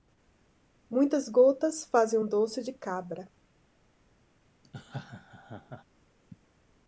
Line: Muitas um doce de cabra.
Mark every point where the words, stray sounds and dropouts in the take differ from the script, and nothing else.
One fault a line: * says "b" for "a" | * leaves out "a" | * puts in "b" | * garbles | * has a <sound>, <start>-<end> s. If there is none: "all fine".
* puts in "gotas fazem"
* has a laugh, 4.6-5.8 s